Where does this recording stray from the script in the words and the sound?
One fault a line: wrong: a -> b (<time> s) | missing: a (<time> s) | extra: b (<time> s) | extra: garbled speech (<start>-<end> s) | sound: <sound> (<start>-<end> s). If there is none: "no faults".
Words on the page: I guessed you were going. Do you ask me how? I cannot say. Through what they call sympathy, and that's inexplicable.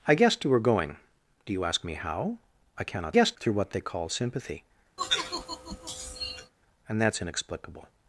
wrong: say -> guessed (3.1 s)
sound: sigh (5.0-6.5 s)